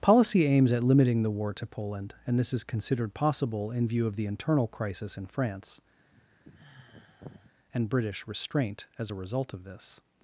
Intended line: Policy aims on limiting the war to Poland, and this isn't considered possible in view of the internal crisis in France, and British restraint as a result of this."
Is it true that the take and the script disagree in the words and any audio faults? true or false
true